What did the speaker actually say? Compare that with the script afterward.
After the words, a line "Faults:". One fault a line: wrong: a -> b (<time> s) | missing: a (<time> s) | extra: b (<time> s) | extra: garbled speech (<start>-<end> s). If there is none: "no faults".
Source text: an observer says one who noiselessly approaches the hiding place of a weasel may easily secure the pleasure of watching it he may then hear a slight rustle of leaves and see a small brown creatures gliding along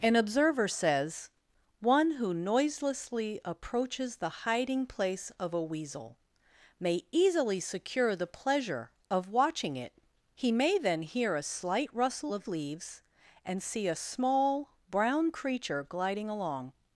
an observer says one who noiselessly approaches the hiding place of a weasel may easily secure the pleasure of watching it he may then hear a slight rustle of leaves and see a small brown creature gliding along
Faults:
wrong: creatures -> creature (15.3 s)